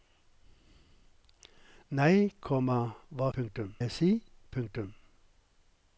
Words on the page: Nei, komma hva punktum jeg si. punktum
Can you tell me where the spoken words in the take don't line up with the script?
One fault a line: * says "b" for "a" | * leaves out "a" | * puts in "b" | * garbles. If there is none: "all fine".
all fine